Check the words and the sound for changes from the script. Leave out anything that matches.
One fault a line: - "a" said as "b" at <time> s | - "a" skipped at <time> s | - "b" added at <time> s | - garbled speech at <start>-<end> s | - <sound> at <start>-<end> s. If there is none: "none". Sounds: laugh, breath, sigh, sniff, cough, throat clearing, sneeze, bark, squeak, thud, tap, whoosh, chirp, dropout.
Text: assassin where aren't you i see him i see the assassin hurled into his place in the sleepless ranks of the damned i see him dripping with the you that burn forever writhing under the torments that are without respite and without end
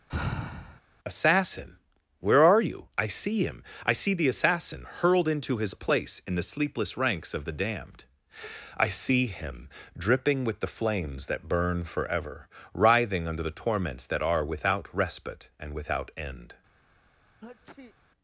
- sigh at 0.1-0.8 s
- "aren't" said as "are" at 2.4 s
- "you" said as "flames" at 10.7 s
- sneeze at 17.4-17.9 s